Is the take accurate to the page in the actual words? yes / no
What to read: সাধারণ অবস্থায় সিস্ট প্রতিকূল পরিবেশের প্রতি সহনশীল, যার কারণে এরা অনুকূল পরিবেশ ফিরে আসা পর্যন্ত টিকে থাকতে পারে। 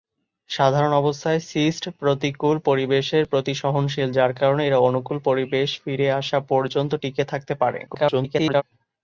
no